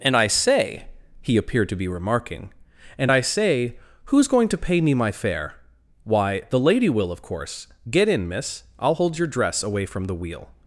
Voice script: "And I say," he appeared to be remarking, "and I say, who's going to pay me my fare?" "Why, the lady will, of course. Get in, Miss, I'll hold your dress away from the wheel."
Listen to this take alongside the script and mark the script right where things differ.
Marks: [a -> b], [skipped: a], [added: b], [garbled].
"And I say," he appeared to be remarking, "and I say, who's going to pay me my fare?" "Why, the lady will, of course. Get in, Miss, I'll hold your dress away from the wheel."